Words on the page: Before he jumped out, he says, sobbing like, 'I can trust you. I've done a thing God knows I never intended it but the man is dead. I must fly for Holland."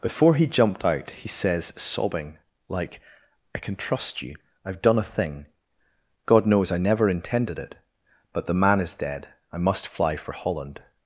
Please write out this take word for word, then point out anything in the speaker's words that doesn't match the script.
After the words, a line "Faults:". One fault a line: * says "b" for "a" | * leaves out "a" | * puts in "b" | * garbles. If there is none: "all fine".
Before he jumped out, he says, sobbing like, 'I can trust you. I've done a thing God knows I never intended it but the man is dead. I must fly for Holland."
Faults:
all fine